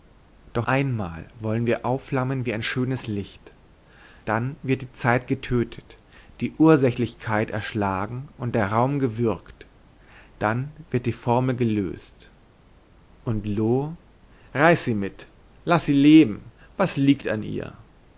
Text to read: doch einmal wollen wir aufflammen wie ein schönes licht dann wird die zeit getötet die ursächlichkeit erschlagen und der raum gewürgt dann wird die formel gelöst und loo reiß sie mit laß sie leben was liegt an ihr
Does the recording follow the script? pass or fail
pass